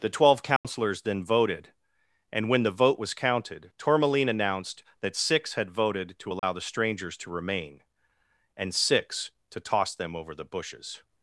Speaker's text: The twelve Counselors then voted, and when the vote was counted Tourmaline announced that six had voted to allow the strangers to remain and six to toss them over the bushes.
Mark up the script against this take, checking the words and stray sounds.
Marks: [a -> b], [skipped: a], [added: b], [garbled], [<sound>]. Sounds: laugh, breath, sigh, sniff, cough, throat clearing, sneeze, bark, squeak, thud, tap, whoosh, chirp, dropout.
The twelve Counselors [dropout] then voted, and when the vote was counted Tourmaline announced that six had voted to allow [dropout] the strangers to remain and six to toss them over the bushes.